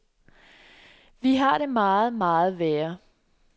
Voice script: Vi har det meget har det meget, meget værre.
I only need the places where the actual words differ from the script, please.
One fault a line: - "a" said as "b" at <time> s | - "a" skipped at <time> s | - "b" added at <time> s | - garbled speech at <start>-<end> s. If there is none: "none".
- "har det meget" skipped at 2.1 s